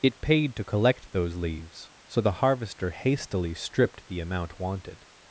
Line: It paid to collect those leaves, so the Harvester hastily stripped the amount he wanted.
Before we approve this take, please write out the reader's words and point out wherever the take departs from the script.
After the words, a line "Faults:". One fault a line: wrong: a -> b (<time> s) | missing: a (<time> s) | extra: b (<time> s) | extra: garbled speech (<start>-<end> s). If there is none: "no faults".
It paid to collect those leaves, so the Harvester hastily stripped the amount wanted.
Faults:
missing: he (4.6 s)